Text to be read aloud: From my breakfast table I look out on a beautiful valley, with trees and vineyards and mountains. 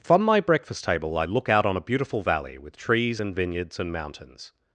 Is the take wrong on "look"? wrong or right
right